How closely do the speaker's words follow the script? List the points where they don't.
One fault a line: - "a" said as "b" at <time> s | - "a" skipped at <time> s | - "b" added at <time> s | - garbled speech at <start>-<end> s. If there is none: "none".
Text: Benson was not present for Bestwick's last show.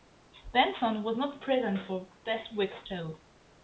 - "last" skipped at 2.9 s